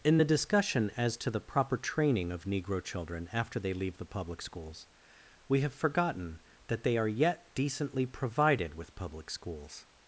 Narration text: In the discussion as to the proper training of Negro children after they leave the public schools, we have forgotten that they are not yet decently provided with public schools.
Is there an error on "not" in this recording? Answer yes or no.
yes